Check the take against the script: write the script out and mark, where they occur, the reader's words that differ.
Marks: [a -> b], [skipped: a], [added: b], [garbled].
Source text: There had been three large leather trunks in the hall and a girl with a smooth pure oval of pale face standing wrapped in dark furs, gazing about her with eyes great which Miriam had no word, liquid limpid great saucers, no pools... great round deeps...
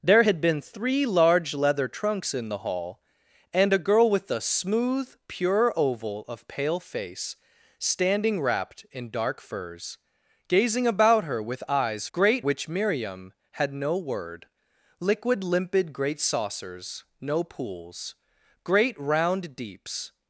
There had been three large leather trunks in the hall and a girl with a smooth pure oval of pale face standing wrapped in dark furs, gazing about her with eyes great which Miriam had no word, liquid limpid great saucers, no pools... great round deeps...